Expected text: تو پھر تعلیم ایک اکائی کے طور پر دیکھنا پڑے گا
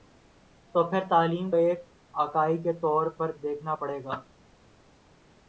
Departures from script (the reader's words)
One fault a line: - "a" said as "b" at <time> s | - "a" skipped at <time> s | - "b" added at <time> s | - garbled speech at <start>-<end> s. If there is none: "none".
none